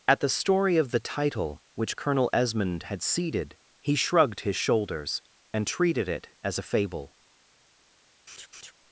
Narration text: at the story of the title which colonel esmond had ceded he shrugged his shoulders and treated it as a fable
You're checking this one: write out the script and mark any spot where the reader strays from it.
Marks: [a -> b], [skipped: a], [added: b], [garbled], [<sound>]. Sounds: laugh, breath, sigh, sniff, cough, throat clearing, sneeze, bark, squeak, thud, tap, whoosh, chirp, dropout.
at the story of the title which colonel esmond had ceded he shrugged his shoulders and treated it as a fable [laugh]